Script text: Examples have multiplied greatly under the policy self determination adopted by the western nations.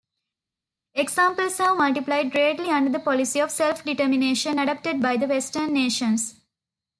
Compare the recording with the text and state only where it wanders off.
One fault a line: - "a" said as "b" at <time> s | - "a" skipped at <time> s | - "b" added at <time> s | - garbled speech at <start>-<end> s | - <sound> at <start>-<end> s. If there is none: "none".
- "of" added at 3.4 s